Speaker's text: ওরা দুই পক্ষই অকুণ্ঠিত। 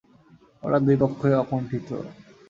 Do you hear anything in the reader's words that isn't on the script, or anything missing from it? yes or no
no